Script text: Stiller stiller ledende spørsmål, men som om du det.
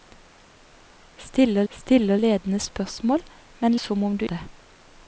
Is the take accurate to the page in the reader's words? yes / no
yes